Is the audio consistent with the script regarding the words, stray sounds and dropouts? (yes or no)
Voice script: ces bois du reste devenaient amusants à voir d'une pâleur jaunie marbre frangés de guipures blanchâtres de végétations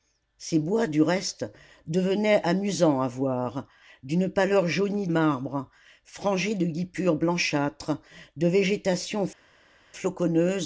yes